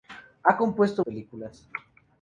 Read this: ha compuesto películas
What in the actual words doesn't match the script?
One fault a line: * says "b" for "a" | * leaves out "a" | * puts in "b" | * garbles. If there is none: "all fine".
all fine